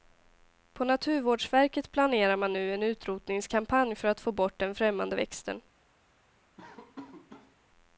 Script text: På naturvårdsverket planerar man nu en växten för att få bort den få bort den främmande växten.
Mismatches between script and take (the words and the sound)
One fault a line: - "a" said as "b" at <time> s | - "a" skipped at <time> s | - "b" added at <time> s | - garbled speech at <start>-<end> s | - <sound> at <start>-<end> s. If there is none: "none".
- "växten" said as "utrotningskampanj" at 2.8 s
- "få bort den" skipped at 4.8 s
- laugh at 6.6-7.6 s